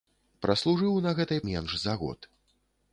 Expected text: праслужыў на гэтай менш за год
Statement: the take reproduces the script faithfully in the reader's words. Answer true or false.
true